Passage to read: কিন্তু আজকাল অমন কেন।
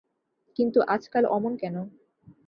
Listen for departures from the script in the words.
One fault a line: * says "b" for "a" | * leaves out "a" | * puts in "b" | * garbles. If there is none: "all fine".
all fine